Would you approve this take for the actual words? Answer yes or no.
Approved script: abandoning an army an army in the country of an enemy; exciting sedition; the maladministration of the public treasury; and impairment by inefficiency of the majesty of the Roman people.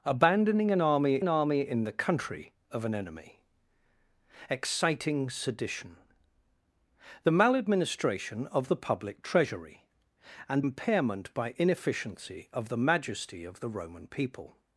yes